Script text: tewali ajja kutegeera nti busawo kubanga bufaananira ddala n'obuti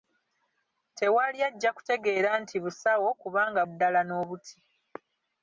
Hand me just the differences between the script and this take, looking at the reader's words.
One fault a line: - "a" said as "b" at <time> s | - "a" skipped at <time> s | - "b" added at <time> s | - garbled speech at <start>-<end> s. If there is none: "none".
- "bufaananira" skipped at 3.6 s